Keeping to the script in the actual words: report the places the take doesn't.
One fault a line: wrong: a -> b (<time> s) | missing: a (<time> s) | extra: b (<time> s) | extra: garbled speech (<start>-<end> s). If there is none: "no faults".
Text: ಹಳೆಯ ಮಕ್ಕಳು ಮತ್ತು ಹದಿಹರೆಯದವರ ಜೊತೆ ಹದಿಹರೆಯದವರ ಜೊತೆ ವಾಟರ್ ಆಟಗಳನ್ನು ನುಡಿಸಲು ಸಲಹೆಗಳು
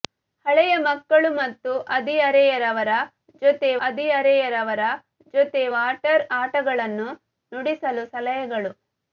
no faults